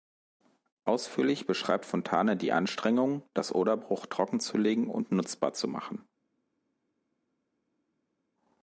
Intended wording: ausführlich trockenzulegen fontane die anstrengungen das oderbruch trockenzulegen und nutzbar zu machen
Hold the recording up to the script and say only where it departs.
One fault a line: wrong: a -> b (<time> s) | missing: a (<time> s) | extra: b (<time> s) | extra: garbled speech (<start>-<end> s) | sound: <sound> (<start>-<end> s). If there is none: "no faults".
wrong: trockenzulegen -> beschreibt (1.4 s)